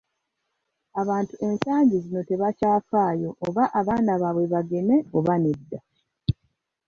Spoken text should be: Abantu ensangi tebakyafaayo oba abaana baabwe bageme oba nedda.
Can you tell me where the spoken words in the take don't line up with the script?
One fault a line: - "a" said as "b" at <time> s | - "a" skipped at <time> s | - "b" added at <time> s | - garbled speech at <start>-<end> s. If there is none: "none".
- "zino" added at 2.0 s